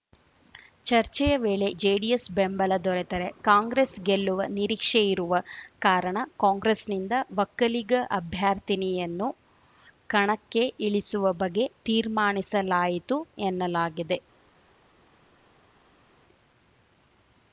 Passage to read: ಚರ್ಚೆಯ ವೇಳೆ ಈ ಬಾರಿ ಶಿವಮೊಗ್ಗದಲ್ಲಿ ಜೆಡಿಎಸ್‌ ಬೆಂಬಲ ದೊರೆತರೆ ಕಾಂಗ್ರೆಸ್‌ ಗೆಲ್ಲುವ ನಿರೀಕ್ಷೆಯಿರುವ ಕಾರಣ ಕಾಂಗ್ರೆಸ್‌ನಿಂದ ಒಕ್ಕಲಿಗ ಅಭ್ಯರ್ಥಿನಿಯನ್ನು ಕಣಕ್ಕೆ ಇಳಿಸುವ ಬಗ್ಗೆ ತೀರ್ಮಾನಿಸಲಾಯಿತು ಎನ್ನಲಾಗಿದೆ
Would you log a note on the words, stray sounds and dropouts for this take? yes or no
yes